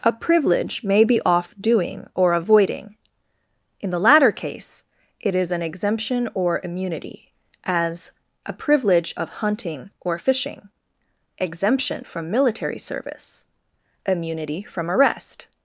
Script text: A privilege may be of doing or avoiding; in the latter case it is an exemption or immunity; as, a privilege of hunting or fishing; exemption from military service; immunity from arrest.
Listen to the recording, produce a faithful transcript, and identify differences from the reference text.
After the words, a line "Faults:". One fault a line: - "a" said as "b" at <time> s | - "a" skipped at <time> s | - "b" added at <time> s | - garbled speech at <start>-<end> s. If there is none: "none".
A privilege may be off doing or avoiding; in the latter case it is an exemption or immunity; as, a privilege of hunting or fishing; exemption from military service; immunity from arrest.
Faults:
- "of" said as "off" at 1.2 s